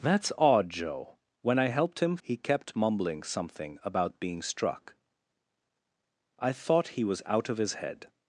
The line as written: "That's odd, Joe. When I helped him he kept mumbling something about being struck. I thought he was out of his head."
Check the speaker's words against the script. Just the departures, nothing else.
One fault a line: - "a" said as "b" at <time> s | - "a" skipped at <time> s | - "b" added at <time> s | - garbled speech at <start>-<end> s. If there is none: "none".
none